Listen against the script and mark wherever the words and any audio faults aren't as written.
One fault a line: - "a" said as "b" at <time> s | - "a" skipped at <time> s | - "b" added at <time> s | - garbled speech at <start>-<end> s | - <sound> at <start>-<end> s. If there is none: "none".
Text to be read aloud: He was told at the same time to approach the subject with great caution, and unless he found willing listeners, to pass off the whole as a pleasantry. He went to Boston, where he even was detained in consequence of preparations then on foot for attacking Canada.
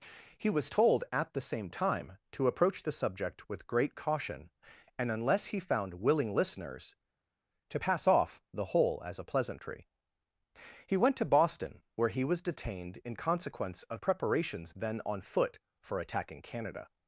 - "even" skipped at 12.2 s